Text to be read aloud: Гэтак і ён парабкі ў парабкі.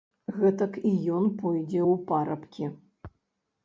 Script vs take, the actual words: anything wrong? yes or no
yes